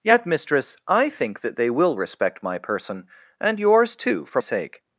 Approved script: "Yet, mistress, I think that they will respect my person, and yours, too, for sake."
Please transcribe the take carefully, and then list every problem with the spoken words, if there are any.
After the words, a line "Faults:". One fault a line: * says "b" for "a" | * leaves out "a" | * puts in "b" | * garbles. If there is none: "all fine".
"Yet, mistress, I think that they will respect my person, and yours, too, for sake."
Faults:
all fine